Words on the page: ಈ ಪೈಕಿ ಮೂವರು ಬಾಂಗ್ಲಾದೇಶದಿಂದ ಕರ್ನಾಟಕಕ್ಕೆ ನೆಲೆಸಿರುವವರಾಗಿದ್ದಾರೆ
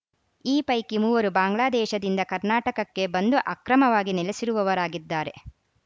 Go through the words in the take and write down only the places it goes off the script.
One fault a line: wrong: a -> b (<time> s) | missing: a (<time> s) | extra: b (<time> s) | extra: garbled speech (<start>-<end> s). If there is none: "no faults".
extra: ಬಂದು ಅಕ್ರಮವಾಗಿ (3.1 s)